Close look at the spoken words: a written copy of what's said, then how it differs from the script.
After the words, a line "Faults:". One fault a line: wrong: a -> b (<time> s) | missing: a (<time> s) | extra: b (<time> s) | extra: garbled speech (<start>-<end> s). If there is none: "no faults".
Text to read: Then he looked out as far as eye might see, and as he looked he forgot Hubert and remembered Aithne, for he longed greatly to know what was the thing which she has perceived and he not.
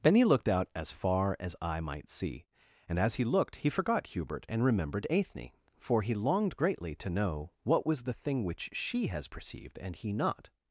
Then he looked out as far as eye might see, and as he looked he forgot Hubert and remembered Aithne, for he longed greatly to know what was the thing which she has perceived and he not.
Faults:
no faults